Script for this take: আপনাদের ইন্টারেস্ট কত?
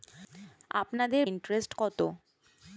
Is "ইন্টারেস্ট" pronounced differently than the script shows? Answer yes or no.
no